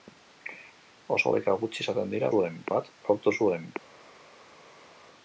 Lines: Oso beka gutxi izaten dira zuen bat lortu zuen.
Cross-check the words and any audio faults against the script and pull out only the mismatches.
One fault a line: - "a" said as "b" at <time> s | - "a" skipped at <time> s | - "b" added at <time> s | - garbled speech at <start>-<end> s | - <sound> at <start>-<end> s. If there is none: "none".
none